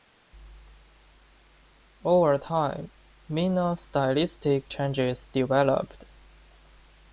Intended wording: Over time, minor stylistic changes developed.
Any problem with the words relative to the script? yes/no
no